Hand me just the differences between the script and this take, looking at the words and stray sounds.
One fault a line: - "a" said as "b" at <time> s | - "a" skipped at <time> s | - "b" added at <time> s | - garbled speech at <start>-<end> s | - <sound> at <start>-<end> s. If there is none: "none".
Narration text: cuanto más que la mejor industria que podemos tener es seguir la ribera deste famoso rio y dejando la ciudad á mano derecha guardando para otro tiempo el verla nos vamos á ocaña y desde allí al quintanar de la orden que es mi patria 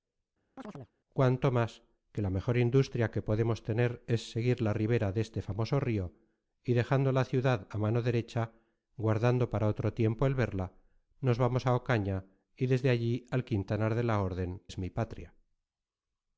- chirp at 0.6-0.9 s
- "que" skipped at 14.6 s